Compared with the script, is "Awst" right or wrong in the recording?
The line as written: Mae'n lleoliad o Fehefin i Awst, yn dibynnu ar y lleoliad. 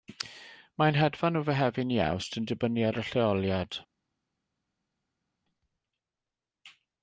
right